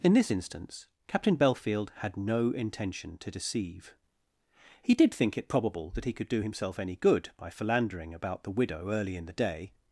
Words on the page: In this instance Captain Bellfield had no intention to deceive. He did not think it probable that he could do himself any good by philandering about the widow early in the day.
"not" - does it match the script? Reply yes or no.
no